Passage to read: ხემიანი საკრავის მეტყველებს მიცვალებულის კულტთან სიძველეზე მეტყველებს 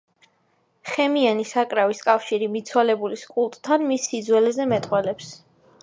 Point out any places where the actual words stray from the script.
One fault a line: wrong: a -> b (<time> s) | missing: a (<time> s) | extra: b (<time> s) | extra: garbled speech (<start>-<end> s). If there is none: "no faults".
wrong: მეტყველებს -> კავშირი (2.1 s)
extra: მის (3.9 s)